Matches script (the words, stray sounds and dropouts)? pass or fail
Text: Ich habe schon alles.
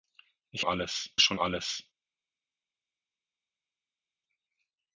fail